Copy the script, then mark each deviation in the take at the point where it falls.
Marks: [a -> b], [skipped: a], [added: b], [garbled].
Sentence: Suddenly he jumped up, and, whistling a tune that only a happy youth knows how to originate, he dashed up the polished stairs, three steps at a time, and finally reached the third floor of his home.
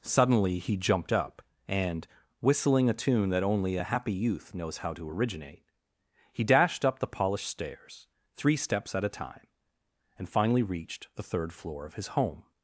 Suddenly he jumped up, and, whistling a tune that only a happy youth knows how to originate, he dashed up the polished stairs, three steps at a time, and finally reached the third floor of his home.